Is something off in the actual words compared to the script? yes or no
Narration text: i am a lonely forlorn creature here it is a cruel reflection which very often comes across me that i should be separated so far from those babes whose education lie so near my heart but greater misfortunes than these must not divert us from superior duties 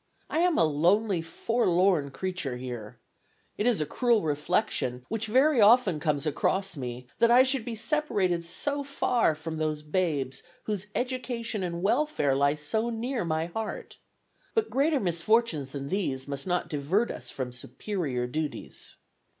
yes